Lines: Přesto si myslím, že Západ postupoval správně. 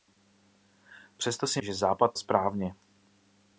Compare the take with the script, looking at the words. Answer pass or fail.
fail